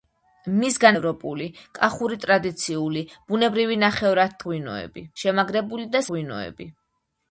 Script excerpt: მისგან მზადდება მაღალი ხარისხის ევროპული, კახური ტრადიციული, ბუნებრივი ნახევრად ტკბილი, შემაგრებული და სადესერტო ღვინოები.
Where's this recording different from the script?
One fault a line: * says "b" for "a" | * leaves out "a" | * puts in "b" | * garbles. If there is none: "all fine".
* leaves out "მზადდება მაღალი ხარისხის"
* says "ღვინოები" for "ტკბილი"
* leaves out "სადესერტო"